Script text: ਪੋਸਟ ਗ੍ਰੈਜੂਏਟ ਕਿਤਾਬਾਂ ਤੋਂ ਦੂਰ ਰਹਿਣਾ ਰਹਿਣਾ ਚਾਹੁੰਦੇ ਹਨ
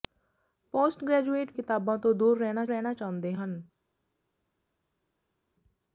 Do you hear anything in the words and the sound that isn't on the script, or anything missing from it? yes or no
no